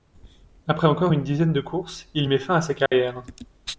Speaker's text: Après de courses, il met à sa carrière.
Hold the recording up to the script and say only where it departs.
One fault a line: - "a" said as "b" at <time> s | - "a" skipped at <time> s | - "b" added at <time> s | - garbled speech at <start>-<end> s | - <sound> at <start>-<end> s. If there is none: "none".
- "encore une dizaine" added at 0.9 s
- "fin" added at 2.4 s
- dropout at 2.9-2.9 s